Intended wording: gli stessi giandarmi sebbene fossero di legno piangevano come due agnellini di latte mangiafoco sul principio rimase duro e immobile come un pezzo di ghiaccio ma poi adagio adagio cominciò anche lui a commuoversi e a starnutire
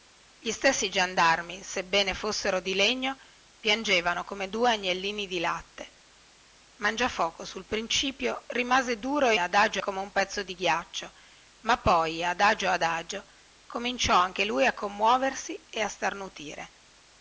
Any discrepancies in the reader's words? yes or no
yes